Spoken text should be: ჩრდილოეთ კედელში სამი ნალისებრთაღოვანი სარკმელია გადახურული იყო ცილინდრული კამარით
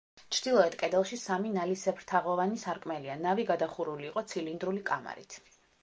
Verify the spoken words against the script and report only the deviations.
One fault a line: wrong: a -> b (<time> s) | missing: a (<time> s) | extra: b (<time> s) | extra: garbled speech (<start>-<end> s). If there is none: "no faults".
extra: ნავი (3.3 s)